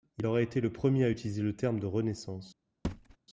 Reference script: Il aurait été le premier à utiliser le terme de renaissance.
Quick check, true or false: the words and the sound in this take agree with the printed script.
false